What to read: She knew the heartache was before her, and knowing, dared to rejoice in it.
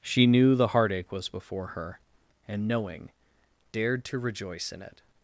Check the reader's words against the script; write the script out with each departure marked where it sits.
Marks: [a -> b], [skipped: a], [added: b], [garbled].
She knew the heartache was before her, and knowing, dared to rejoice in it.